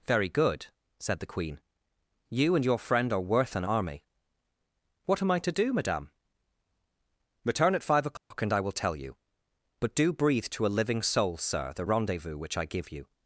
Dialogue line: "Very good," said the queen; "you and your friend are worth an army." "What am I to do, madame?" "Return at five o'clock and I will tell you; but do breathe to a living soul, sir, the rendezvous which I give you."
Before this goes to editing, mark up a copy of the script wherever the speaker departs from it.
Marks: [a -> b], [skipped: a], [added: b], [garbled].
"Very good," said the queen; "you and your friend are worth an army." "What am I to do, madame?" "Return at five o'clock and I will tell you; but do breathe to a living soul, sir, the rendezvous which I give you."